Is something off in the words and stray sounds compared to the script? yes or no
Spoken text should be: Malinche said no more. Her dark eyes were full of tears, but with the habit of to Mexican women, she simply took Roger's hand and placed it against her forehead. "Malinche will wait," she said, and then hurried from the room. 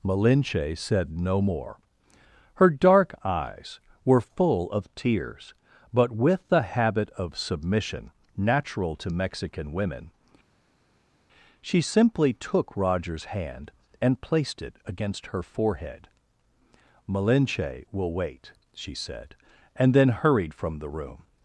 yes